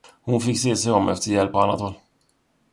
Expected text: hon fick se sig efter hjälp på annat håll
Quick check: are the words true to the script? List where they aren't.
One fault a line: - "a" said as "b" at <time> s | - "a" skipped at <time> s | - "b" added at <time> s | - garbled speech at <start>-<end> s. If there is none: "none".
- "om" added at 0.9 s